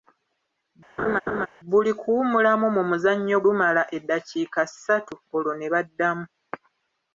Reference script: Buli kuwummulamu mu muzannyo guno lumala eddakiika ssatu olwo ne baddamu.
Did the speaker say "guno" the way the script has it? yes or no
no